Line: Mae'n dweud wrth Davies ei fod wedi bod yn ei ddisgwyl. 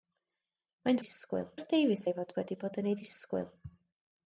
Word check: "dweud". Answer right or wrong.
wrong